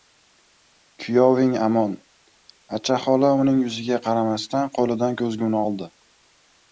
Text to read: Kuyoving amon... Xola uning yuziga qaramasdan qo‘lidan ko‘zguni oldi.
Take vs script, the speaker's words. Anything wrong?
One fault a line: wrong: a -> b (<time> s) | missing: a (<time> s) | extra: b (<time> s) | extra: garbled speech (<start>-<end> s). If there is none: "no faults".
extra: Acha (2.8 s)